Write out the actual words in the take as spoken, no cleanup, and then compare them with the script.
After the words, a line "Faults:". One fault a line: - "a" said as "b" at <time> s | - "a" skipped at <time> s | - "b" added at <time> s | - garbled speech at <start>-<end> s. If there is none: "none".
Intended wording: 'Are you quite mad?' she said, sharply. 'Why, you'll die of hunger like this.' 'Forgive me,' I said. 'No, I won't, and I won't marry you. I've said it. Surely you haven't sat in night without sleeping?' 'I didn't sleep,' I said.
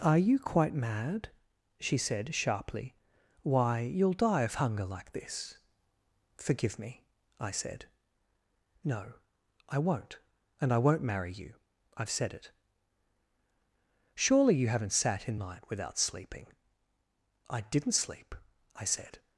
'Are you quite mad?' she said, sharply. 'Why, you'll die of hunger like this.' 'Forgive me,' I said. 'No, I won't, and I won't marry you. I've said it. Surely you haven't sat in night without sleeping?' 'I didn't sleep,' I said.
Faults:
none